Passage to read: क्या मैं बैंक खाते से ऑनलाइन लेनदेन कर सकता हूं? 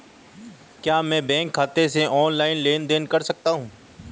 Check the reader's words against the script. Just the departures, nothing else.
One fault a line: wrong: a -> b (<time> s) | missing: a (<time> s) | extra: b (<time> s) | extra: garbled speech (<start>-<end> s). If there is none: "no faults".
no faults